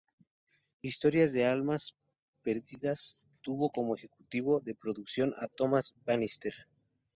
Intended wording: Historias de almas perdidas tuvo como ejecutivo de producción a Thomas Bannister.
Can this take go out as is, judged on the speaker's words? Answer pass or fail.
pass